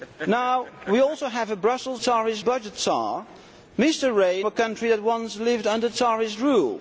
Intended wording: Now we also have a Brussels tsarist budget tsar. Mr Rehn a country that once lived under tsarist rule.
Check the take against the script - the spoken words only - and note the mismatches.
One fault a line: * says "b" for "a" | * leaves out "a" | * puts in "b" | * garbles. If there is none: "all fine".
all fine